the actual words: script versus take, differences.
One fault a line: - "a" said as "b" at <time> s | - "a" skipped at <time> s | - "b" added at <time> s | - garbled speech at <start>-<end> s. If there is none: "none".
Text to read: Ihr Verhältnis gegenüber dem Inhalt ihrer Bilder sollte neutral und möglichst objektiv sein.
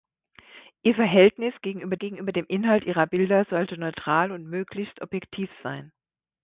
- "gegenüber" added at 2.0 s